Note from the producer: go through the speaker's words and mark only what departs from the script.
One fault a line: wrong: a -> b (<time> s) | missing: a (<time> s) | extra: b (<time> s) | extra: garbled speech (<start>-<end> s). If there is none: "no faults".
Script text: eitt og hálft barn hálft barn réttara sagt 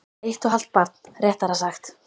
missing: hálft barn (0.9 s)